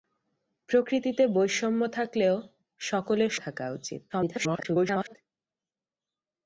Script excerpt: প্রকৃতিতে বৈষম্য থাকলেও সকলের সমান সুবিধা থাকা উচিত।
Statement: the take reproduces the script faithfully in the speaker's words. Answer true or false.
false